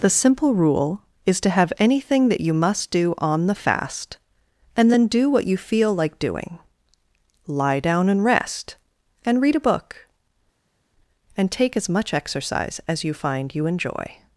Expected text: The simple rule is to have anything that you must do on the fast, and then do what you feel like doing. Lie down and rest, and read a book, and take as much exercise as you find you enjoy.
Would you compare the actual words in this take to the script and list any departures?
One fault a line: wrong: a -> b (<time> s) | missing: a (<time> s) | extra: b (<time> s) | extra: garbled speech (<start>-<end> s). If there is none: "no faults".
no faults